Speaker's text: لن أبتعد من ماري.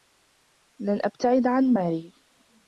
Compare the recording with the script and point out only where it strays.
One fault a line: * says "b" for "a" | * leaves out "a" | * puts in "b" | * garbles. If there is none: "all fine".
* says "عن" for "من"